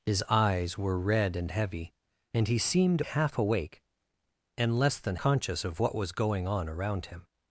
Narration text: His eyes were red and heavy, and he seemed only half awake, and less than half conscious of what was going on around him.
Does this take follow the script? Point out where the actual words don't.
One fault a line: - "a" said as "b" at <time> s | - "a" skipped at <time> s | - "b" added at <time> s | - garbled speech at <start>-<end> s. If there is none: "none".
- "only" skipped at 3.0 s
- "half" skipped at 5.2 s